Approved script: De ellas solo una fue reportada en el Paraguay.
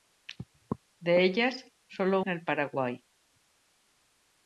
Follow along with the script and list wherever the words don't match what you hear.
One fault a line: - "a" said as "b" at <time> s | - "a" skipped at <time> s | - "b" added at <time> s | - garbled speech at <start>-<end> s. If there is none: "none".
- "una fue reportada" skipped at 2.2 s